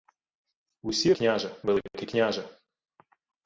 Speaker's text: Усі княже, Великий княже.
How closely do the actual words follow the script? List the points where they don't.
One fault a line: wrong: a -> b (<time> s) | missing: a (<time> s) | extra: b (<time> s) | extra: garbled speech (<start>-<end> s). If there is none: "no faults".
no faults